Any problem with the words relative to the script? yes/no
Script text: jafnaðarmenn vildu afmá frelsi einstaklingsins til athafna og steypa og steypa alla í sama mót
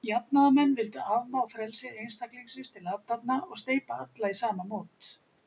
yes